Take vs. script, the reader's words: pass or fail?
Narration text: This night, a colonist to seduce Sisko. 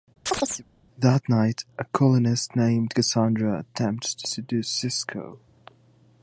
fail